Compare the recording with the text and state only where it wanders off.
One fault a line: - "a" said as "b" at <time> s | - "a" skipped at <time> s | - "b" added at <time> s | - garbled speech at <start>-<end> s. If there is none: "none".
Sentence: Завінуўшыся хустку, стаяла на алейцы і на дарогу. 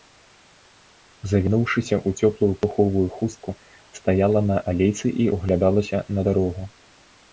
- "ў цёплую пуховую" added at 2.1 s
- "ўглядалася" added at 5.4 s